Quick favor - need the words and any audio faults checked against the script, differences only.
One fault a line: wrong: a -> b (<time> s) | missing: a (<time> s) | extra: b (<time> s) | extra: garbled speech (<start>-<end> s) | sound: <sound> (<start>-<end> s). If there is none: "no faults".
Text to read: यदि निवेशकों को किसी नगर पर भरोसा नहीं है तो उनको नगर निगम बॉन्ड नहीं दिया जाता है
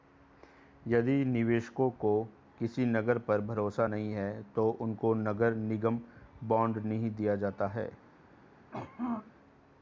sound: throat clearing (8.7-9.3 s)